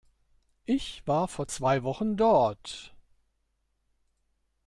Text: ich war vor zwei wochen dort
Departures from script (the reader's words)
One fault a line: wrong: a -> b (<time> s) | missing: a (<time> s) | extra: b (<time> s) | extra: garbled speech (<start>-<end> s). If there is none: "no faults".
no faults